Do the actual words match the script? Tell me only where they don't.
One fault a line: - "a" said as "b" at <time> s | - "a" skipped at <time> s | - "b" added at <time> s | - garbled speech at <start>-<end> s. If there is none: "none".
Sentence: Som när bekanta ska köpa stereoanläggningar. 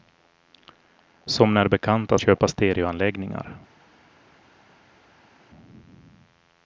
- "ska" skipped at 2.2 s